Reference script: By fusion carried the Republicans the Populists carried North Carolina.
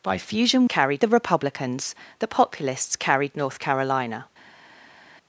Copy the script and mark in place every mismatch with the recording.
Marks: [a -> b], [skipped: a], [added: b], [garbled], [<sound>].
By fusion carried the Republicans the Populists carried North Carolina.